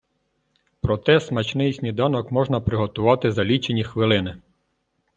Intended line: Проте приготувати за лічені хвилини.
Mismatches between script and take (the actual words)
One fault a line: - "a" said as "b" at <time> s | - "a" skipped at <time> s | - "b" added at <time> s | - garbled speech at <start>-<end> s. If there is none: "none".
- "смачний сніданок можна" added at 1.2 s